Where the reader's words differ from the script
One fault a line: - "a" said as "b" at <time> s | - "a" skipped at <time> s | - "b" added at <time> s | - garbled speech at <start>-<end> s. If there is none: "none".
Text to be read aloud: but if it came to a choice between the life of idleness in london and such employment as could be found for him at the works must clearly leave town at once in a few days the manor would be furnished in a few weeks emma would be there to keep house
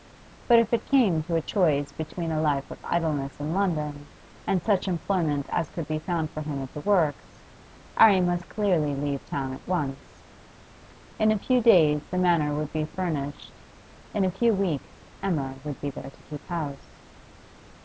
- "the" said as "a" at 2.3 s
- "arry" added at 8.0 s